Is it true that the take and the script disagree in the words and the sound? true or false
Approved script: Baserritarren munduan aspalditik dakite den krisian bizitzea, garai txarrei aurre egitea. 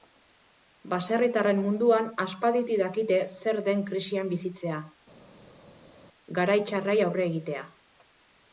true